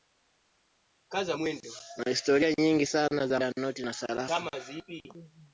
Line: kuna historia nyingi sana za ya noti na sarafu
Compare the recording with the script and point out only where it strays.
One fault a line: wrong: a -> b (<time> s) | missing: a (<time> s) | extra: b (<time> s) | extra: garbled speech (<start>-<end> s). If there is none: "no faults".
no faults